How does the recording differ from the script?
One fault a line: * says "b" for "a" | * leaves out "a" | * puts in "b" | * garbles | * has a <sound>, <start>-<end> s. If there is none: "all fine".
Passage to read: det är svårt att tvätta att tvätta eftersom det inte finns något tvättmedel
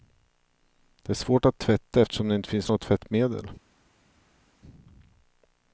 * leaves out "att tvätta"